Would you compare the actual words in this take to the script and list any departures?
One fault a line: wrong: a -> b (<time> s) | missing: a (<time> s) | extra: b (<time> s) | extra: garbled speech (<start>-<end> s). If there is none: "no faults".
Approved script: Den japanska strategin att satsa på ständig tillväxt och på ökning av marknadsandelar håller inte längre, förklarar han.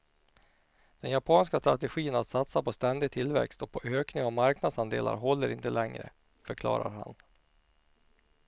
no faults